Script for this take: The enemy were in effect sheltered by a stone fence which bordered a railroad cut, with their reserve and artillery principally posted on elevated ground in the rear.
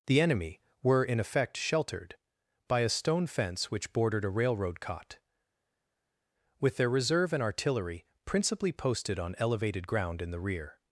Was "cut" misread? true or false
true